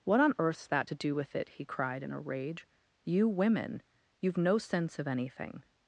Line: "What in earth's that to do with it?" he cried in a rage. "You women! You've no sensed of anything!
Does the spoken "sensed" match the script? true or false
false